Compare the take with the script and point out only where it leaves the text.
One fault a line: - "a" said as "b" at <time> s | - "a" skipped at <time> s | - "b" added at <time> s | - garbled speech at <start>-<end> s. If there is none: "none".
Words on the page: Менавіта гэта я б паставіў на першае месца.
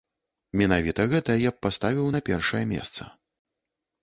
none